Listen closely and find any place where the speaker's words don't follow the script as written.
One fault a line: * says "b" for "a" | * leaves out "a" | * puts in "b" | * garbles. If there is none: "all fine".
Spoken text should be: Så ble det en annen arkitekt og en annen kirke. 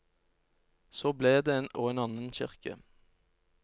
* leaves out "annen arkitekt"